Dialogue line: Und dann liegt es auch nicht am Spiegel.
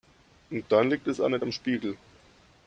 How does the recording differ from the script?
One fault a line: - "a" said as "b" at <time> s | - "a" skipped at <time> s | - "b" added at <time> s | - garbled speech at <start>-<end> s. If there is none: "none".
none